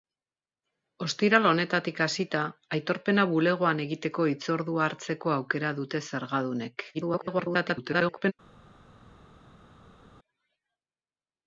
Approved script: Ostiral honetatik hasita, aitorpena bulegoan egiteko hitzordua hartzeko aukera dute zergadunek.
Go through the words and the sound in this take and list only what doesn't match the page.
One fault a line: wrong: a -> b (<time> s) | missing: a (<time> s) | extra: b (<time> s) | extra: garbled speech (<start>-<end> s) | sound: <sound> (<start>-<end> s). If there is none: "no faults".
extra: garbled speech (6.9-8.3 s)